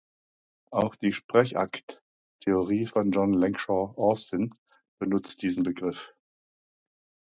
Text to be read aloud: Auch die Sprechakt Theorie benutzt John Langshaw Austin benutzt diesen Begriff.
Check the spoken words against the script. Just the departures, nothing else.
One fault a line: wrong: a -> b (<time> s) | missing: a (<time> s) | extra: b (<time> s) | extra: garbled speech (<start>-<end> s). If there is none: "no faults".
wrong: benutzt -> von (2.8 s)